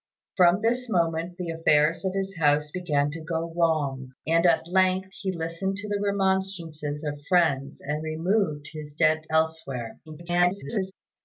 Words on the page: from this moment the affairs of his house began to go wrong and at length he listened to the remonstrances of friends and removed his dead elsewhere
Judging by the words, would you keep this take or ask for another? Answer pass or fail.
fail